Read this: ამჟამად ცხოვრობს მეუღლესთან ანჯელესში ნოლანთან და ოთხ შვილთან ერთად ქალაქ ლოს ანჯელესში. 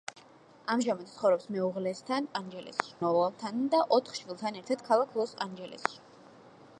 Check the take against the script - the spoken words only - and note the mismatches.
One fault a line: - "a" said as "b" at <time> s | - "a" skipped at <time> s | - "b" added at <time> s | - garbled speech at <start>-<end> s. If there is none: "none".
none